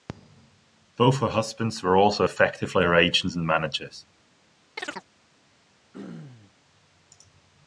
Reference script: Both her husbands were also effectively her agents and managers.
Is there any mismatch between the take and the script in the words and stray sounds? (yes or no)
yes